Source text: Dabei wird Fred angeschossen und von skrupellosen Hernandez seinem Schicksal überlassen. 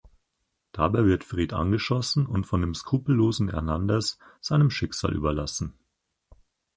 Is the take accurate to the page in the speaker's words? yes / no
no